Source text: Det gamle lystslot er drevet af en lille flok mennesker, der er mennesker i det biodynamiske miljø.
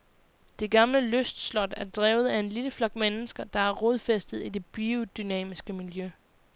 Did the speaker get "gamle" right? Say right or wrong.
right